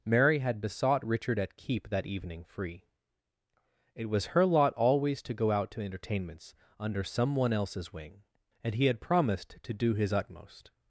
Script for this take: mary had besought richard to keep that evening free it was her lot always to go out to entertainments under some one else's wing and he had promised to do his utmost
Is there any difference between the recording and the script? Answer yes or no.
yes